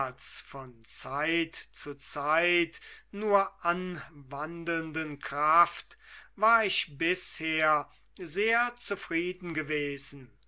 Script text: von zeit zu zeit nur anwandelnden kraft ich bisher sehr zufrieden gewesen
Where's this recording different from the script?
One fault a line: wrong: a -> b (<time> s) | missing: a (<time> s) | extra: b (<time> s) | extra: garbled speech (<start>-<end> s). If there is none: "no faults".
extra: war (6.4 s)